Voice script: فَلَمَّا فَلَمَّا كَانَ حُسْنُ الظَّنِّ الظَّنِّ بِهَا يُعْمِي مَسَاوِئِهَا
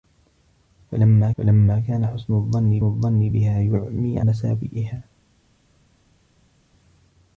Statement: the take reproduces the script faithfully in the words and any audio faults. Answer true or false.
true